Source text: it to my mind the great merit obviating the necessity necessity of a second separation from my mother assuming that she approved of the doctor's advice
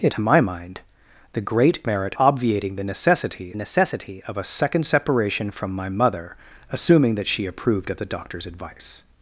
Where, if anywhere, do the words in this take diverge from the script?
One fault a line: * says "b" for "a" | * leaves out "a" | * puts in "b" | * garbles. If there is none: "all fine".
all fine